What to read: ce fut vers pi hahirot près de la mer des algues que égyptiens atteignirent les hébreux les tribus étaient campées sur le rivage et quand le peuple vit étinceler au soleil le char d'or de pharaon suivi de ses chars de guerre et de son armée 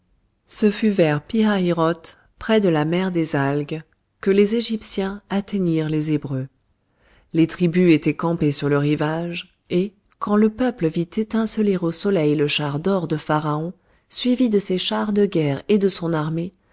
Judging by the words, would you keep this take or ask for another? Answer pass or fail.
fail